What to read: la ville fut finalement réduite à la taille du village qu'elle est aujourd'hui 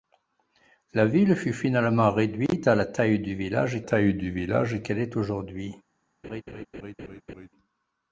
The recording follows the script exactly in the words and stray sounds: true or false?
false